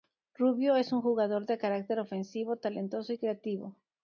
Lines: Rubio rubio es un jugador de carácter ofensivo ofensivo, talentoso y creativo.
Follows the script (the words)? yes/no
no